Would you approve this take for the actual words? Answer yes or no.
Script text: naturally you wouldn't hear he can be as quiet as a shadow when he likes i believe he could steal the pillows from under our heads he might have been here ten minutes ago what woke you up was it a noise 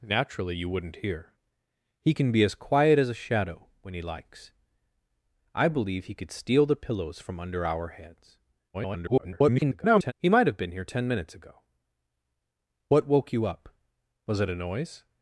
no